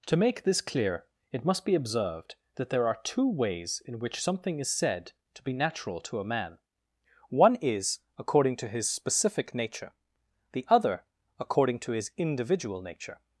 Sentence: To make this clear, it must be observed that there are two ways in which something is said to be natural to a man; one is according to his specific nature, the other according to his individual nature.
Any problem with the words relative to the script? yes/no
no